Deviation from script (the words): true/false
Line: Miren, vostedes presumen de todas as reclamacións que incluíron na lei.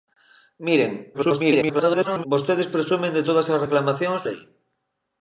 true